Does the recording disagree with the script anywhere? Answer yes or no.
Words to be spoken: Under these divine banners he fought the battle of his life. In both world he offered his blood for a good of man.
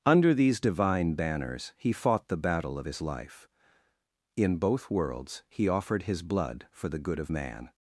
yes